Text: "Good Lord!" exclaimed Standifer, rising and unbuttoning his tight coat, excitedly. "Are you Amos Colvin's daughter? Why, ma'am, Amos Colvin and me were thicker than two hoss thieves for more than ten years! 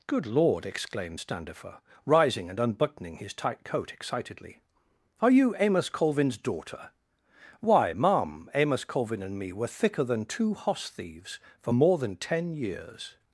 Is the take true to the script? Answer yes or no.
yes